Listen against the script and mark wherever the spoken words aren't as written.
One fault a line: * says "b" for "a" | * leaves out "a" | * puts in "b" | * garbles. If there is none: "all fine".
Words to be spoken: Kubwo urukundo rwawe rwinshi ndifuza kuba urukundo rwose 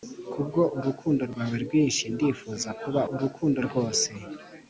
all fine